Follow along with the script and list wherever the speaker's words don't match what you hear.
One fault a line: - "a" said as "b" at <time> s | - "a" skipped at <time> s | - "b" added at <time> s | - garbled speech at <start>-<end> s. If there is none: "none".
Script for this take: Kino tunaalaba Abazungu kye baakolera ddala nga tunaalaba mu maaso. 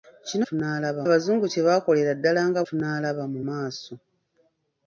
none